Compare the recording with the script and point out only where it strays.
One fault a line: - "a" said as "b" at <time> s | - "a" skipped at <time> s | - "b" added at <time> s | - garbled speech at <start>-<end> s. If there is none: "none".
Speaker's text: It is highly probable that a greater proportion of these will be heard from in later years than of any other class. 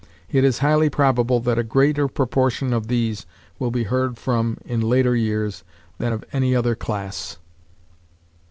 none